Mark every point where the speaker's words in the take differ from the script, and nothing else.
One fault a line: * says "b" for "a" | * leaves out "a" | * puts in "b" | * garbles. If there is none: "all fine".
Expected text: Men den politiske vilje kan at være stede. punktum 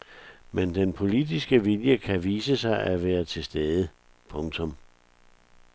* puts in "vise sig"
* puts in "til"